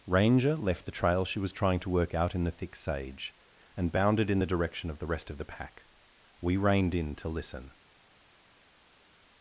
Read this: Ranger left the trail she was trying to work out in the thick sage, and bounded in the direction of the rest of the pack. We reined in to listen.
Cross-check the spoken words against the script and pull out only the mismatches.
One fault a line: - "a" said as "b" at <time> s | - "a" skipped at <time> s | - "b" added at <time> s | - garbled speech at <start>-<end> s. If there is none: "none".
none